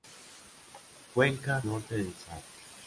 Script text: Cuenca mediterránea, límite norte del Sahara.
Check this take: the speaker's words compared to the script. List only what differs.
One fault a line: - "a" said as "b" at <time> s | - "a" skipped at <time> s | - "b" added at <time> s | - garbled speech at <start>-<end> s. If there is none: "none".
- "mediterránea límite" skipped at 1.6 s